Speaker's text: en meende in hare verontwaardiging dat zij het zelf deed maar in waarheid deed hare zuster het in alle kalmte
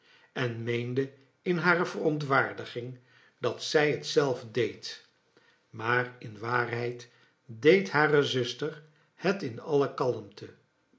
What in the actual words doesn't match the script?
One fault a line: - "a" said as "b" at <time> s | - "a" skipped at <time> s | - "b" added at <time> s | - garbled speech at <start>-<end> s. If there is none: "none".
none